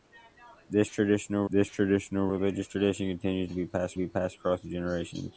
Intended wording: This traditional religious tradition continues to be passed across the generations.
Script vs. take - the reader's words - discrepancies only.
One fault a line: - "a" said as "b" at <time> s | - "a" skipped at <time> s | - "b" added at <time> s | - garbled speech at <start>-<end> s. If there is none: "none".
- "this traditional" added at 1.5 s
- "be passed" added at 4.0 s